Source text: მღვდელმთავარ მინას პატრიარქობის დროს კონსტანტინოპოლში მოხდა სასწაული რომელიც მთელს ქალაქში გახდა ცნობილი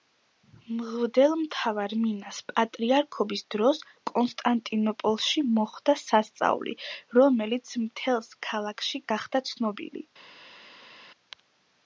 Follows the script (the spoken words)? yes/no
yes